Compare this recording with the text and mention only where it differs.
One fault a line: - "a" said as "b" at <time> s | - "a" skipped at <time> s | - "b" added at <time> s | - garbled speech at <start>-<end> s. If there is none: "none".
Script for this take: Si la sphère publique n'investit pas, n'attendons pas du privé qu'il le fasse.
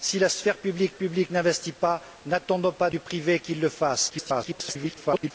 - "publique" added at 0.9 s
- garbled speech at 4.1-5.3 s